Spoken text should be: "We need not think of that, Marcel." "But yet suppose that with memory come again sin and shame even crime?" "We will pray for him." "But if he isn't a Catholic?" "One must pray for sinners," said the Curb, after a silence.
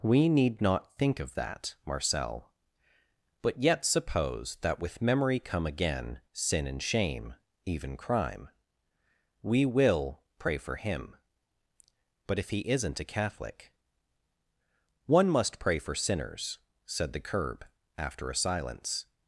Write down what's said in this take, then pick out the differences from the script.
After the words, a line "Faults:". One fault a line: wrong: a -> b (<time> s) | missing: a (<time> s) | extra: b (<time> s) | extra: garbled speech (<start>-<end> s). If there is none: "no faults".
"We need not think of that, Marcel." "But yet suppose that with memory come again sin and shame even crime?" "We will pray for him." "But if he isn't a Catholic?" "One must pray for sinners," said the Curb, after a silence.
Faults:
no faults